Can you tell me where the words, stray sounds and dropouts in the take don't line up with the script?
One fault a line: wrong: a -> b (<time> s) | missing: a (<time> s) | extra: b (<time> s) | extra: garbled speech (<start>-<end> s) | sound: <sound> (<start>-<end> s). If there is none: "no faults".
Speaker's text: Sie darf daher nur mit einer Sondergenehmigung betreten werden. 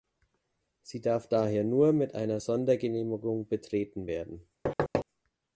sound: thud (4.7-5.1 s)